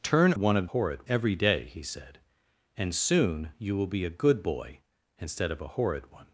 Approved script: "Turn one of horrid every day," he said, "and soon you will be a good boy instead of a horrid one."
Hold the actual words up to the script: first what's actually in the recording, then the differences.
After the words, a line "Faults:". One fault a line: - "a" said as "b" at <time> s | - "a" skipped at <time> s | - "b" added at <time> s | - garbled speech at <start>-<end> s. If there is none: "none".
"Turn one of horrid every day," he said, "and soon you will be a good boy instead of a horrid one."
Faults:
none